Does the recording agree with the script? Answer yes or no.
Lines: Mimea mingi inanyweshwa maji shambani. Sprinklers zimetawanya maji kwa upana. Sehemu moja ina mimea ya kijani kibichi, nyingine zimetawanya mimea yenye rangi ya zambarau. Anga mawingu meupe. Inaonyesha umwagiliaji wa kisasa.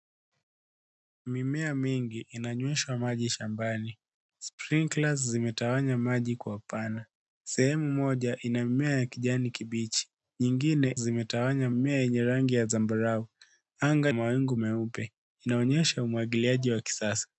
yes